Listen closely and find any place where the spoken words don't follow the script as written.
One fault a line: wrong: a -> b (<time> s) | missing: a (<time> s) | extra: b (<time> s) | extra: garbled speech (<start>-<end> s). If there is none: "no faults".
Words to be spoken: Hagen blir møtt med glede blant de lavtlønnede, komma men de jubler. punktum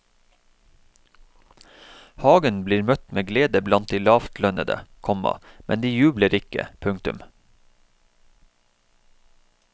extra: ikke (6.4 s)